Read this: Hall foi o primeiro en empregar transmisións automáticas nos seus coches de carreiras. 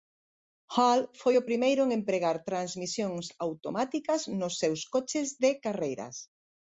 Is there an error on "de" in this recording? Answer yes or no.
no